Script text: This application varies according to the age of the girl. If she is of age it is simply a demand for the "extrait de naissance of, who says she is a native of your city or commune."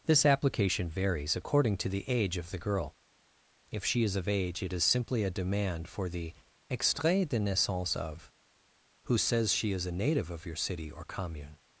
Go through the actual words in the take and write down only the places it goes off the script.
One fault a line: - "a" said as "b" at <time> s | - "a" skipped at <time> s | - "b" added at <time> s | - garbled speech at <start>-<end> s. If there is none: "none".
none